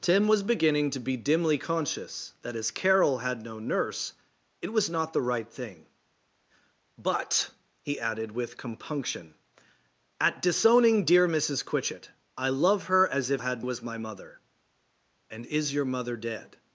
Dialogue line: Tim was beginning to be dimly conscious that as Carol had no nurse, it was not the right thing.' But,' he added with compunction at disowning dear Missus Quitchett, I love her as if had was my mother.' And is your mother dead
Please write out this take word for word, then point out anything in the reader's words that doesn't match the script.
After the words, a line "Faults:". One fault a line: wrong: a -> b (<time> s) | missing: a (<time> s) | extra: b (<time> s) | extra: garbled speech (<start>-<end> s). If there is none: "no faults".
Tim was beginning to be dimly conscious that as Carol had no nurse, it was not the right thing.' But,' he added with compunction at disowning dear Missus Quitchett, I love her as if had was my mother.' And is your mother dead
Faults:
no faults